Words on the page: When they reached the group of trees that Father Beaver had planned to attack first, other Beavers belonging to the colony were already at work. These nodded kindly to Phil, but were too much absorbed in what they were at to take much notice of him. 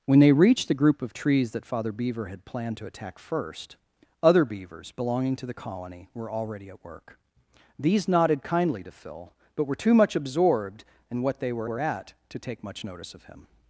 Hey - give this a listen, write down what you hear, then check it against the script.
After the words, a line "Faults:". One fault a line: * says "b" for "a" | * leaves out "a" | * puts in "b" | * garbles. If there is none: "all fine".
When they reached the group of trees that Father Beaver had planned to attack first, other Beavers belonging to the colony were already at work. These nodded kindly to Phil, but were too much absorbed in what they were were at to take much notice of him.
Faults:
* puts in "were"